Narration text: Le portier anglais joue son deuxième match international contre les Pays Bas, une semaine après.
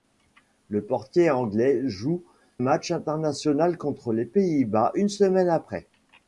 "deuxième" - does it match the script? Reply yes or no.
no